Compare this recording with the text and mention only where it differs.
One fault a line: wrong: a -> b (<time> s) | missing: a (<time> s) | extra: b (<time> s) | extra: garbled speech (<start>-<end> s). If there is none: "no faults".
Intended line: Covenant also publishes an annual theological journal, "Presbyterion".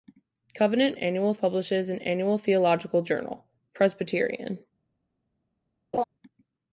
wrong: also -> annual (1.0 s)